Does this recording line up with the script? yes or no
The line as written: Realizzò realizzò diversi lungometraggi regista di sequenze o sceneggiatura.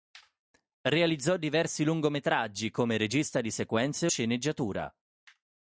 no